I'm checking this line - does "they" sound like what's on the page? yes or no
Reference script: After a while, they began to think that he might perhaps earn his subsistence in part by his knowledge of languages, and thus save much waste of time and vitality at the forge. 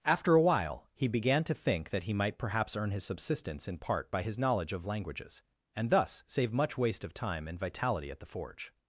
no